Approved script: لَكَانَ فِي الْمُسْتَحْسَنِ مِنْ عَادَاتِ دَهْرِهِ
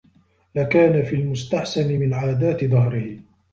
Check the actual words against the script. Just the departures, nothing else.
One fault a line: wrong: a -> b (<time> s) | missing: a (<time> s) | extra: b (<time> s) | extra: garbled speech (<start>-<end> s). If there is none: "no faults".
no faults